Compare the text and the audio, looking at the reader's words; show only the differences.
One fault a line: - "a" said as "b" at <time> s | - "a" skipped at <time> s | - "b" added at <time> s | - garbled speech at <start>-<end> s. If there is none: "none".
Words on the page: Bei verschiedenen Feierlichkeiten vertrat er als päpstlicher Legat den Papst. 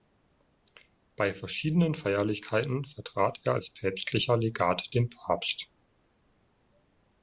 none